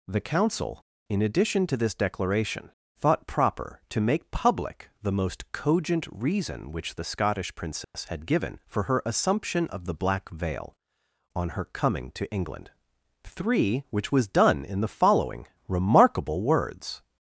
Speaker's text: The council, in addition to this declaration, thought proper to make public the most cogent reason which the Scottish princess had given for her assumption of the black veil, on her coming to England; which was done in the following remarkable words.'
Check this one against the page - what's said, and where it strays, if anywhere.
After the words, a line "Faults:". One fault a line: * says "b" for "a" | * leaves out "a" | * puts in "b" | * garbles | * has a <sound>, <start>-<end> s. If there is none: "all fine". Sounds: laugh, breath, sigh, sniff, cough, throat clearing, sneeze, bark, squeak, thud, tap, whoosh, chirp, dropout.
The council, in addition to this declaration, thought proper to make public the most cogent reason which the Scottish princess had given for her assumption of the black veil, on her coming to England; three which was done in the following remarkable words.'
Faults:
* has a dropout, 7.8-7.9 s
* puts in "three"